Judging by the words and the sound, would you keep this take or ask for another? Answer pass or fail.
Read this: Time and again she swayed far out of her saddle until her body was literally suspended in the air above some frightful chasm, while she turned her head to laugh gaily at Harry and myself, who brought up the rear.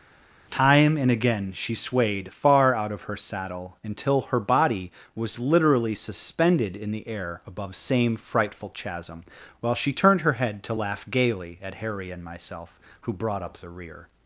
fail